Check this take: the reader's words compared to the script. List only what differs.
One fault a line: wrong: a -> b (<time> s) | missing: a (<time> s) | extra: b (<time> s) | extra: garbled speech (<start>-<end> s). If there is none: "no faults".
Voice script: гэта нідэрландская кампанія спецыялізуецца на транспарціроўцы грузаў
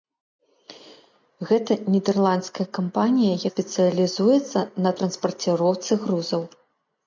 no faults